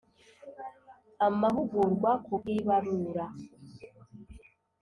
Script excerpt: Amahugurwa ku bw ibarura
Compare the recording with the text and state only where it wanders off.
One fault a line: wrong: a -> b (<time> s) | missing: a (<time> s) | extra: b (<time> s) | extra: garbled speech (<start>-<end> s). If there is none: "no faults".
no faults